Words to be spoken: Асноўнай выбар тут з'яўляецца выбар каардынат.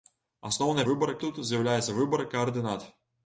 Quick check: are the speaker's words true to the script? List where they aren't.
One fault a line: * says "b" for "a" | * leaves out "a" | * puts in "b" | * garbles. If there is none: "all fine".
all fine